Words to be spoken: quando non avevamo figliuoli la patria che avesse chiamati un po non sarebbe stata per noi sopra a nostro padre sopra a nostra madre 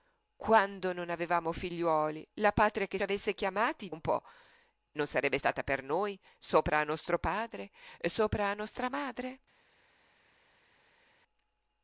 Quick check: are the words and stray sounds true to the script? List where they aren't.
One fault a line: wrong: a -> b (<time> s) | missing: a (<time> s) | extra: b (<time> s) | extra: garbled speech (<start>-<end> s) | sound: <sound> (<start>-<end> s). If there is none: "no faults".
no faults